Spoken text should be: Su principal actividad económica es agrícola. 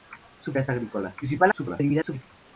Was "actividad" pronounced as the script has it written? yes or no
no